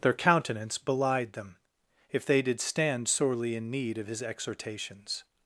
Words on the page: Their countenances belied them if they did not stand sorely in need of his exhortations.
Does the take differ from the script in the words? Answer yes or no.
yes